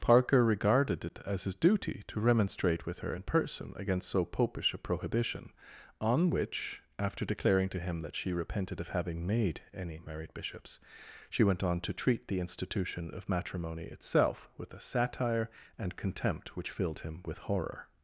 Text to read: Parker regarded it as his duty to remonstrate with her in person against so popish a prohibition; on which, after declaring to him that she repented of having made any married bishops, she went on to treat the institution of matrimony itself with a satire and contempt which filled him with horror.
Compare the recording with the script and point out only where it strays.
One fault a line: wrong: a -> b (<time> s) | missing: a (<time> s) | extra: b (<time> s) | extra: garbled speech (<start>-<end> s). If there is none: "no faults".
no faults